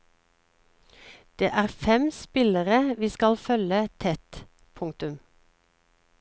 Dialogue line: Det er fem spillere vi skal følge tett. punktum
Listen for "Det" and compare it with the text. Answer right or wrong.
right